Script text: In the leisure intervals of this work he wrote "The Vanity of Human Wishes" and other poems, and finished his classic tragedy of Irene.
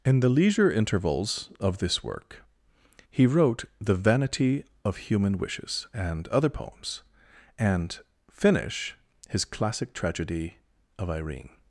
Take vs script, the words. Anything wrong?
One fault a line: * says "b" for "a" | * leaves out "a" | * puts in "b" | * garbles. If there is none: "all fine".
* says "finish" for "finished"